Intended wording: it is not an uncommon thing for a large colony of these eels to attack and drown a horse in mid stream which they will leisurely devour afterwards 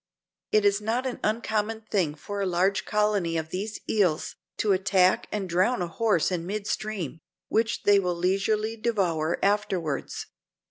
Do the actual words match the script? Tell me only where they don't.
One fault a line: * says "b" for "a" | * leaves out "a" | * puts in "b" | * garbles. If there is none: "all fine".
all fine